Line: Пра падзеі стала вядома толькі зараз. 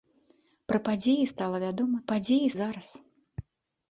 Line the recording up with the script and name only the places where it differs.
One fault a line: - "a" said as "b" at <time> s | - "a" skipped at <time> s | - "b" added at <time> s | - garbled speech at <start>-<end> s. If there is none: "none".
- "толькі" said as "падзеі" at 2.1 s